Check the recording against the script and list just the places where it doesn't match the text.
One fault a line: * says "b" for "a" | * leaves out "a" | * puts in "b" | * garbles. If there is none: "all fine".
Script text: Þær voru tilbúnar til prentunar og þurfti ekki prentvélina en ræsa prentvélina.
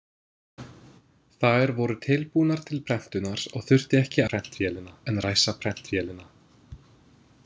all fine